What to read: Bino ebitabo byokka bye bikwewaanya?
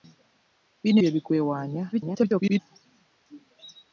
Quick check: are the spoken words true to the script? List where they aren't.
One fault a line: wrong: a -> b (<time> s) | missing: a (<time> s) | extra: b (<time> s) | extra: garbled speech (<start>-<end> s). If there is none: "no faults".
missing: ebitabo byokka (1.0 s)
extra: garbled speech (1.9-2.6 s)